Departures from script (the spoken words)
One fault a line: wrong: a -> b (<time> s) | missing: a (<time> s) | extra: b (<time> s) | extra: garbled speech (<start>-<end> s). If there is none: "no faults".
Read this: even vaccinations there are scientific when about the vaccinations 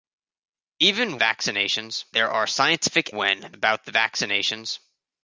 no faults